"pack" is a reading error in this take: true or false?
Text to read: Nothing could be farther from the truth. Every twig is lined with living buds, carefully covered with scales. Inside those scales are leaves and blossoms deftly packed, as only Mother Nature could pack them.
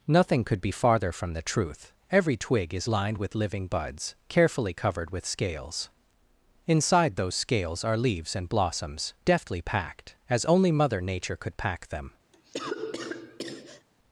false